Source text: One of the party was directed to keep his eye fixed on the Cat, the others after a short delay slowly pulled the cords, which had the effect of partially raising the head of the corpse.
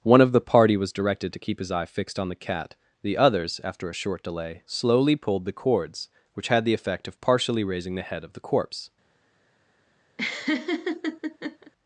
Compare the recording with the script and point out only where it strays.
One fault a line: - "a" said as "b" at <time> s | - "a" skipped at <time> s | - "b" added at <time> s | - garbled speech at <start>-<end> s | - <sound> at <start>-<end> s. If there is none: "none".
- laugh at 10.2-11.7 s